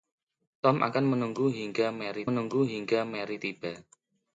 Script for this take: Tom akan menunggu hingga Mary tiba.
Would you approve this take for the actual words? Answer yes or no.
no